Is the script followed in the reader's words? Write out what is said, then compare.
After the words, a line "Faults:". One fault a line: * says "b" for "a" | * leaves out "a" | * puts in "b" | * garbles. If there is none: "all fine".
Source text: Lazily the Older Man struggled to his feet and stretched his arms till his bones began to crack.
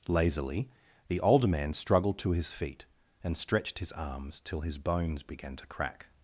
Lazily the Older Man struggled to his feet and stretched his arms till his bones began to crack.
Faults:
all fine